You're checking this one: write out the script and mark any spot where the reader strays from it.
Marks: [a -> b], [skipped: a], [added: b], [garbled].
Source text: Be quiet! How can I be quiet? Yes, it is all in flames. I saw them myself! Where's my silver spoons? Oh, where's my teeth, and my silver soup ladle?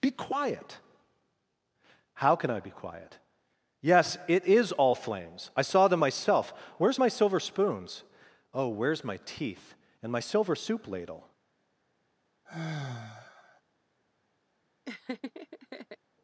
Be quiet! How can I be quiet? Yes, it is all [skipped: in] flames. I saw them myself! Where's my silver spoons? Oh, where's my teeth, and my silver soup ladle?